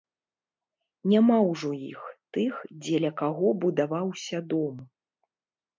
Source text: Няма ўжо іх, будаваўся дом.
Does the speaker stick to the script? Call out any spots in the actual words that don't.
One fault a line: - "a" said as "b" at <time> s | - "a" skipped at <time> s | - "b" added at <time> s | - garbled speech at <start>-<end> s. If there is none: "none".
- "тых дзеля каго" added at 2.4 s